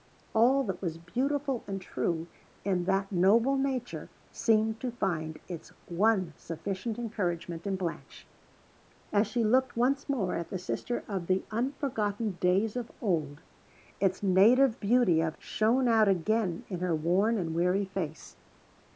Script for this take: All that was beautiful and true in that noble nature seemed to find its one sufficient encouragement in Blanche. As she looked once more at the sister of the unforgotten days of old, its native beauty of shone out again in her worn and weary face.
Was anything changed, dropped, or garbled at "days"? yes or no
no